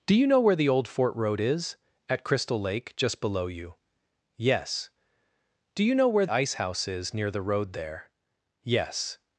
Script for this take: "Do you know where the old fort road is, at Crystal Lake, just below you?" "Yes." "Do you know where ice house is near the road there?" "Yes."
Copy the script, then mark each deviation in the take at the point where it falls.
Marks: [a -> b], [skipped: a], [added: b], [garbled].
"Do you know where the old fort road is, at Crystal Lake, just below you?" "Yes." "Do you know where ice house is near the road there?" "Yes."